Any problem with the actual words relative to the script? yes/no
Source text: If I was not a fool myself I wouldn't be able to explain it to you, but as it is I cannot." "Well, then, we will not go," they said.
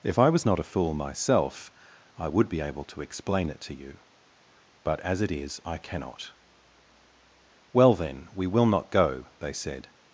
yes